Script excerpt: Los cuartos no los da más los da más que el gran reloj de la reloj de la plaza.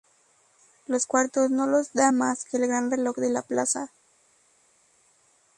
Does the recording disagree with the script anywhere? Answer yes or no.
yes